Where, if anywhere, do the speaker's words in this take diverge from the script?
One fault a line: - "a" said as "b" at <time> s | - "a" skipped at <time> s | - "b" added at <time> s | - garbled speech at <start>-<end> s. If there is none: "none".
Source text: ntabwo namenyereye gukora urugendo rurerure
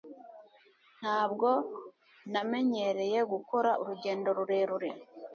none